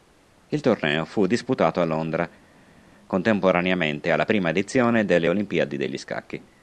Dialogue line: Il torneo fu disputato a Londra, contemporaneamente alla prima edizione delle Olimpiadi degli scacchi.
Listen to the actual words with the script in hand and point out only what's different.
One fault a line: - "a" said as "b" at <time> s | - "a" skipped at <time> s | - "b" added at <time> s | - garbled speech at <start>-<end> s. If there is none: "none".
none